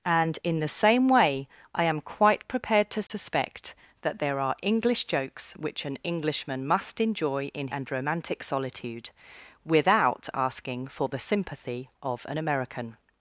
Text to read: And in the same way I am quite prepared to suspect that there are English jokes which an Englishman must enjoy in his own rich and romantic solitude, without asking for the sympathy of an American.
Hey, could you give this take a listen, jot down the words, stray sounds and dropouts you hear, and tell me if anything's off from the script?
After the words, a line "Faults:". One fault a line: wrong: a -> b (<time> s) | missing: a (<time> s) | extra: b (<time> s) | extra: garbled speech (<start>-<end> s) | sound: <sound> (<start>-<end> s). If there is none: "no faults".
And in the same way I am quite prepared to suspect that there are English jokes which an Englishman must enjoy in and romantic solitude, without asking for the sympathy of an American.
Faults:
sound: dropout (3.1-3.1 s)
missing: his own rich (7.7 s)